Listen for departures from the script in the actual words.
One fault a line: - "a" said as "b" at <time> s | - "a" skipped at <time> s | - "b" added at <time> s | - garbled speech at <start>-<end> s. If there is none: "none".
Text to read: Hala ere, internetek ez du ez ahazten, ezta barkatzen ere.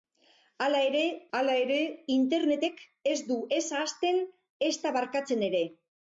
- "hala ere" added at 1.4 s